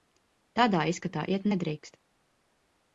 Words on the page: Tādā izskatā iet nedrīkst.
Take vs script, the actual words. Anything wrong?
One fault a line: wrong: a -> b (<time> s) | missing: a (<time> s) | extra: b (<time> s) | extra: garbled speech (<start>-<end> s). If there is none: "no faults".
no faults